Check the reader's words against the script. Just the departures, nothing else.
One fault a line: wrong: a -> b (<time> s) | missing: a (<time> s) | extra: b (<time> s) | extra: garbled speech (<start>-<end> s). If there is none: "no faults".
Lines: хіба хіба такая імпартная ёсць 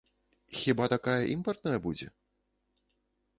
missing: хіба (0.9 s)
wrong: ёсць -> будзе (1.9 s)